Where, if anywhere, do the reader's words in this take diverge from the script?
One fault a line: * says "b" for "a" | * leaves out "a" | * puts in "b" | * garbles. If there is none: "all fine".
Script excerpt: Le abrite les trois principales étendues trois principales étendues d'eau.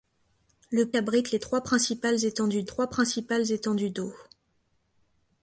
all fine